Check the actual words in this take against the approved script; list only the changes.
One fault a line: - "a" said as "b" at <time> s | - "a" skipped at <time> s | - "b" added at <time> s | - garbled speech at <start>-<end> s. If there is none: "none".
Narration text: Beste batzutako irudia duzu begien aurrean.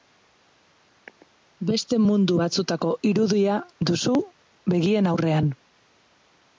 - "mundu" added at 2.0 s